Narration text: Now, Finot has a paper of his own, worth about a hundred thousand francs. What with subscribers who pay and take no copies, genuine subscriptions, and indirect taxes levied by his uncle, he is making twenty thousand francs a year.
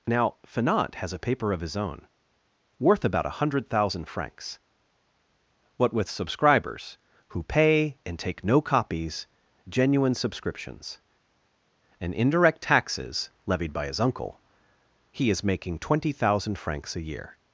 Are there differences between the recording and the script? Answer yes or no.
no